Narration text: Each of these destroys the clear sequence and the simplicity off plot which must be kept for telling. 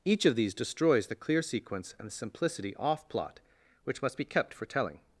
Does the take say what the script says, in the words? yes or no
yes